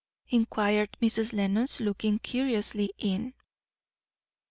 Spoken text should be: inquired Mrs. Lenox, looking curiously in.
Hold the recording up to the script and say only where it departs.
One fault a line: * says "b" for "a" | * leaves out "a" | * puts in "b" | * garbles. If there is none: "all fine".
all fine